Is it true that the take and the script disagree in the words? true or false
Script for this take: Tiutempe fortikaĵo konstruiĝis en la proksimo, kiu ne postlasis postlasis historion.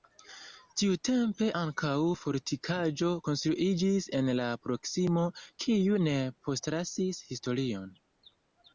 true